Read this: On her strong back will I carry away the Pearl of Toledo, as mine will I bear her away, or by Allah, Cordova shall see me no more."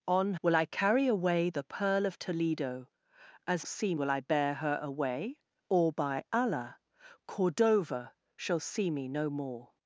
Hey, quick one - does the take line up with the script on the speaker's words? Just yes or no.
no